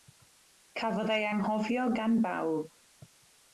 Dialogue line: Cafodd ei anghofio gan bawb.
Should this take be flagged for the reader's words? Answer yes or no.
no